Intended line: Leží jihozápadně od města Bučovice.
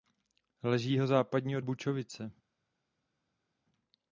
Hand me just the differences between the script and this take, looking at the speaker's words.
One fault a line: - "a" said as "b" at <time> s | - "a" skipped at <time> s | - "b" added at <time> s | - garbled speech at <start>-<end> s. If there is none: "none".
- "města" skipped at 1.6 s